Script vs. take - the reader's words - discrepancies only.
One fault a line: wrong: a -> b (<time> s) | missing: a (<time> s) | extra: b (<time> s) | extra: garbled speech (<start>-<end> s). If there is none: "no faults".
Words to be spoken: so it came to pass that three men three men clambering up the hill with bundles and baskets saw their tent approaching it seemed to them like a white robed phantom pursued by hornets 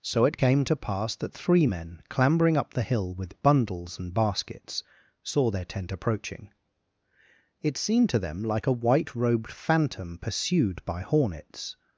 missing: three men (2.0 s)